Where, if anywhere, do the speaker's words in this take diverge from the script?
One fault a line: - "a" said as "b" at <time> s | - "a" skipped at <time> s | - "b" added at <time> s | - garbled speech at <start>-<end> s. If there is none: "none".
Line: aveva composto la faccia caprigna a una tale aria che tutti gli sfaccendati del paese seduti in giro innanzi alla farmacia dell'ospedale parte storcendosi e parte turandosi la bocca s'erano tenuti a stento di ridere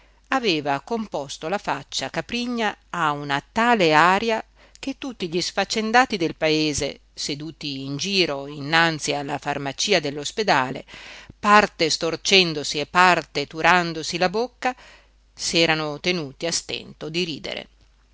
none